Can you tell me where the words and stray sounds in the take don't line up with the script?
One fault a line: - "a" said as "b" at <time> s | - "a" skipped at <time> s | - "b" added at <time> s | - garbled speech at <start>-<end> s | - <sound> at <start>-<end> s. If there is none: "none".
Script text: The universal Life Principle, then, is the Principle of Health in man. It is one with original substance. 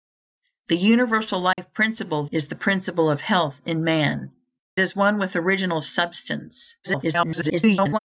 - dropout at 1.5-1.6 s
- "then" skipped at 2.2 s
- "It" skipped at 4.3 s
- garbled speech at 6.8-8.0 s